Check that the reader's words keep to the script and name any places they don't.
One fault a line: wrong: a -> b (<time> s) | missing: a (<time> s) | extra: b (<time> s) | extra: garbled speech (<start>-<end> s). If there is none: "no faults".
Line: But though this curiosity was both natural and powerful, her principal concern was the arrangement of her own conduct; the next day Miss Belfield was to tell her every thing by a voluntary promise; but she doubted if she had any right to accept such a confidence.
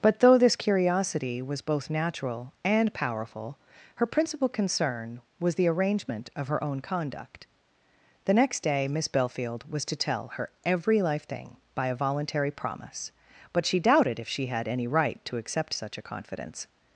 extra: life (11.0 s)